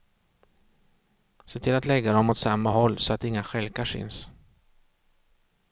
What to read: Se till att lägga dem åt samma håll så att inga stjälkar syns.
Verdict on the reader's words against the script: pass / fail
pass